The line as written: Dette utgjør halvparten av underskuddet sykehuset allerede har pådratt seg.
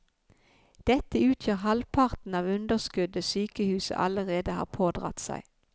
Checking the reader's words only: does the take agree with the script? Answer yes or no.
yes